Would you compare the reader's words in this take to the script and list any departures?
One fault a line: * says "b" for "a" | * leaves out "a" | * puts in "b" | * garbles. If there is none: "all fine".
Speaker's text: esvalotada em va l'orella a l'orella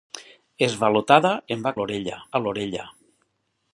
all fine